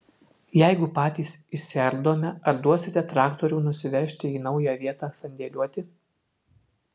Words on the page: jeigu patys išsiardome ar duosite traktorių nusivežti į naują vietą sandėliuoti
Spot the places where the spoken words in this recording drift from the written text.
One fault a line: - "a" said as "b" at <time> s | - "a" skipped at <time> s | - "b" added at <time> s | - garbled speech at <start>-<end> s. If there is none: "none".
none